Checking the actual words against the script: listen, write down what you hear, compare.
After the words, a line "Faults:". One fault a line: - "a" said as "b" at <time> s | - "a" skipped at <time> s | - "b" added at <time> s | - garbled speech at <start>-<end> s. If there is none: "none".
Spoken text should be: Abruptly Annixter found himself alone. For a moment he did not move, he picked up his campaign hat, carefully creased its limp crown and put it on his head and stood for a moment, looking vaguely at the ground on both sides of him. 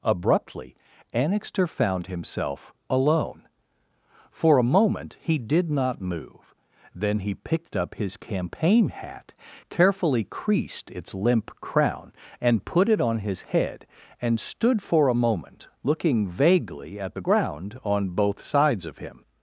Abruptly Annixter found himself alone. For a moment he did not move, then he picked up his campaign hat, carefully creased its limp crown and put it on his head and stood for a moment, looking vaguely at the ground on both sides of him.
Faults:
- "then" added at 7.0 s